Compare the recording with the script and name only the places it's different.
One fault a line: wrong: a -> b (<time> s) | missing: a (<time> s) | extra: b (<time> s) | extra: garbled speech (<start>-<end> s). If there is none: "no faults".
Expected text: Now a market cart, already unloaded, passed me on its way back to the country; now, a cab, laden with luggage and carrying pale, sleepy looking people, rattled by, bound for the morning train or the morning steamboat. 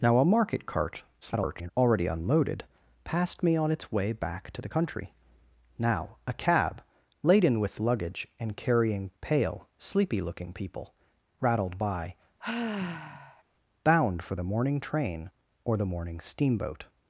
extra: garbled speech (1.2-1.7 s)